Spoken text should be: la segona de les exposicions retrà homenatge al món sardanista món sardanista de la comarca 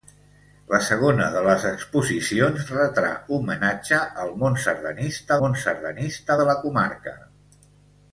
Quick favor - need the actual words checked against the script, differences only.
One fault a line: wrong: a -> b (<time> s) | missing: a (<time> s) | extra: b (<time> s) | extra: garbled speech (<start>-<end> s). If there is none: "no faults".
no faults